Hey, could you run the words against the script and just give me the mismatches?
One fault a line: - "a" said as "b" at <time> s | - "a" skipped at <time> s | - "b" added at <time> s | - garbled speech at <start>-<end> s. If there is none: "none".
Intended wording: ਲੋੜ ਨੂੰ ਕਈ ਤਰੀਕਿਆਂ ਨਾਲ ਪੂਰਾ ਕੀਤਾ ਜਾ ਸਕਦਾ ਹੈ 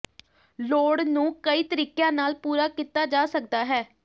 none